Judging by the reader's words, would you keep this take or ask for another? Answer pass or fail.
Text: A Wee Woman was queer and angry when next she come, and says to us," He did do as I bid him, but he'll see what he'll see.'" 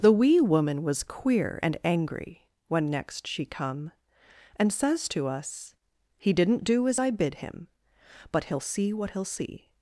fail